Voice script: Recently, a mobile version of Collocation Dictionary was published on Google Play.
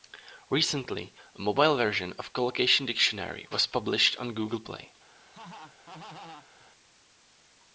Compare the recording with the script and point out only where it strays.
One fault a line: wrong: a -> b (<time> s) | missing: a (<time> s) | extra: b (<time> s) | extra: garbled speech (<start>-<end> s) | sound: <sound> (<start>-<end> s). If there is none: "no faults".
sound: laugh (5.2-6.7 s)